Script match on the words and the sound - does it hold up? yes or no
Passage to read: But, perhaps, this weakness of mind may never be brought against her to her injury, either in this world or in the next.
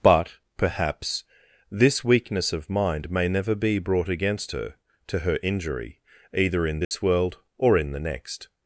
no